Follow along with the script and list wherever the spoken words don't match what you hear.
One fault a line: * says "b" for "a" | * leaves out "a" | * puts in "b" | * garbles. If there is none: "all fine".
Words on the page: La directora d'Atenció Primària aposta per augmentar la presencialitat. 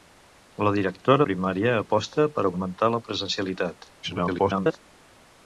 * leaves out "d'Atenció"
* garbles